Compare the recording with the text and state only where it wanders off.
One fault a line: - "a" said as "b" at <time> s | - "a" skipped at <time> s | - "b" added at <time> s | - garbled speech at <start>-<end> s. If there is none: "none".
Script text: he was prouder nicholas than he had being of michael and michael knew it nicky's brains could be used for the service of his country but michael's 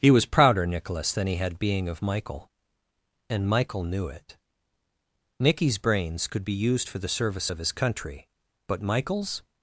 none